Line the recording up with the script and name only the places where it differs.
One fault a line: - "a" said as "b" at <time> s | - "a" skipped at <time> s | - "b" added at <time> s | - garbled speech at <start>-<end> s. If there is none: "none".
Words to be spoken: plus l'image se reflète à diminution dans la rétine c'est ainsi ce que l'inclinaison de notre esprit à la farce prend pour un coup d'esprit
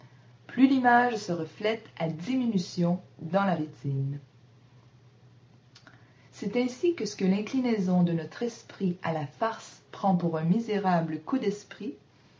- "que" added at 6.9 s
- "misérable" added at 10.4 s